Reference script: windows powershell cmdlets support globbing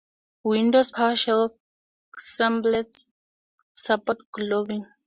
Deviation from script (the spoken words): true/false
false